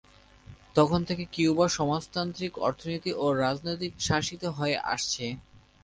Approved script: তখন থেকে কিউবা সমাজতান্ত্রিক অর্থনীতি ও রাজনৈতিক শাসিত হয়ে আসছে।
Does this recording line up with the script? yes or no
yes